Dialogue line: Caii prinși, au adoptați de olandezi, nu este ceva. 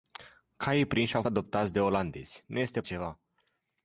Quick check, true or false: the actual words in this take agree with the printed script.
true